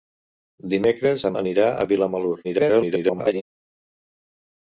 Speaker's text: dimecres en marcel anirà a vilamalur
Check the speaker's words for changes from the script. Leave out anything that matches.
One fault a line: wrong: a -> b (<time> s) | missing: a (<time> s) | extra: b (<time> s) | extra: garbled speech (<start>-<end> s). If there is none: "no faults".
missing: marcel (1.3 s)
extra: garbled speech (2.4-3.4 s)